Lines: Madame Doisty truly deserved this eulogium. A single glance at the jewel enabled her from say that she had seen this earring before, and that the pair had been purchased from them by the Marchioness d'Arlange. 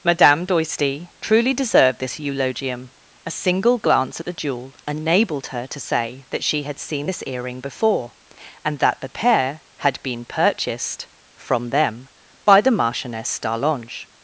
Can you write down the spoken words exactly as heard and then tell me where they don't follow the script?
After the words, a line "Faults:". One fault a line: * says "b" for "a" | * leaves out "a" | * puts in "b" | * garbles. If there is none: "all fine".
Madame Doisty truly deserved this eulogium. A single glance at the jewel enabled her to say that she had seen this earring before, and that the pair had been purchased from them by the Marchioness d'Arlange.
Faults:
* says "to" for "from"